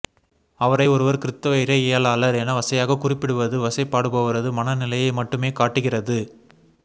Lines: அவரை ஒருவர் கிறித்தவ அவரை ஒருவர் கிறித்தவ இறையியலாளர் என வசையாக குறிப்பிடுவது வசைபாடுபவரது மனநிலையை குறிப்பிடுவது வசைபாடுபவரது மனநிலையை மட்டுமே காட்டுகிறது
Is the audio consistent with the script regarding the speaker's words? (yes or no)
no